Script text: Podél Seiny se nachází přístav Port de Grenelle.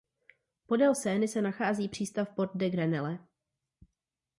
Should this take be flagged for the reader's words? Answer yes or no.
no